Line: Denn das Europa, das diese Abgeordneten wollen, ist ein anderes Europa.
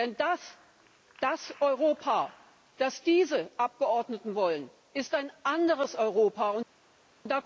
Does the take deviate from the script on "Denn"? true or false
false